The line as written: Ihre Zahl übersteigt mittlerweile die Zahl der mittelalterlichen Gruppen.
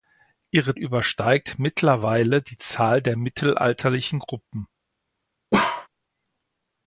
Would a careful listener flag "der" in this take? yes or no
no